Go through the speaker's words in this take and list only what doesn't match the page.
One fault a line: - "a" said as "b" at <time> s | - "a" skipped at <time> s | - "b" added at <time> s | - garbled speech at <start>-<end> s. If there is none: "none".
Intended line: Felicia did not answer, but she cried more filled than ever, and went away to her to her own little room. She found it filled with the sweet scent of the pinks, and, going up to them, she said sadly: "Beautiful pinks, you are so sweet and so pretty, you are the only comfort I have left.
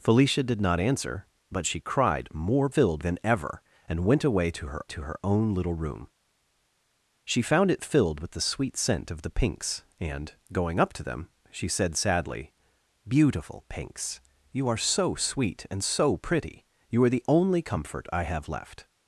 none